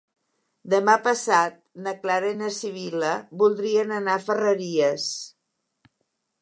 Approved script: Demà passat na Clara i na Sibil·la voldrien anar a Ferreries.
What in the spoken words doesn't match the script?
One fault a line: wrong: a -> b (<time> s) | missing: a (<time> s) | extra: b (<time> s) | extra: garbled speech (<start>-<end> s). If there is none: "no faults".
no faults